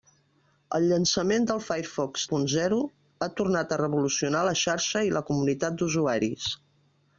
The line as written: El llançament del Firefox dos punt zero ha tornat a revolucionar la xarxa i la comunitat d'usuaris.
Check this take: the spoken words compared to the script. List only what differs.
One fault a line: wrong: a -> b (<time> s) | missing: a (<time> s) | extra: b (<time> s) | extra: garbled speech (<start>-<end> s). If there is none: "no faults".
missing: dos (2.2 s)